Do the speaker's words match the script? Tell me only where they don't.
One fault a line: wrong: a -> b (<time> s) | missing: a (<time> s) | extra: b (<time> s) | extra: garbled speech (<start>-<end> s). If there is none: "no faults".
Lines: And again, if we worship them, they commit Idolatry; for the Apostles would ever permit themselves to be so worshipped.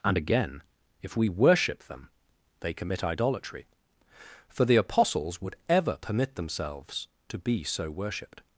no faults